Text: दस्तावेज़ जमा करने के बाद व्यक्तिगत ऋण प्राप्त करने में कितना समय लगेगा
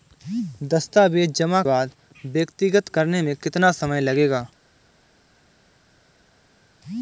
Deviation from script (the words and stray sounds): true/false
true